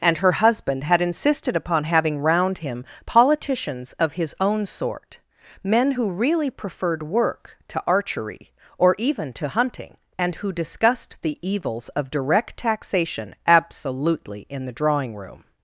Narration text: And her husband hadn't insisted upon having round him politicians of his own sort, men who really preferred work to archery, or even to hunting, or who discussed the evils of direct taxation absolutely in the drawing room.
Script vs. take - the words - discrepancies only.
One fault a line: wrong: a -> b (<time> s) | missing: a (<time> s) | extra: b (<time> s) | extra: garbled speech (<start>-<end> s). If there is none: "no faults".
wrong: hadn't -> had (0.8 s)
wrong: or -> and (10.2 s)